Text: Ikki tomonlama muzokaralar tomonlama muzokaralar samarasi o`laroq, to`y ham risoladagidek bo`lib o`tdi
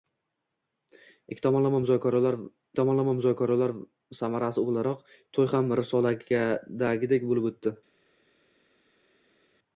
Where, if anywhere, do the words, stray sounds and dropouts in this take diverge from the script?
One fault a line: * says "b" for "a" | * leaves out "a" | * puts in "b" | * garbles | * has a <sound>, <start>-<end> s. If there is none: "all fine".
all fine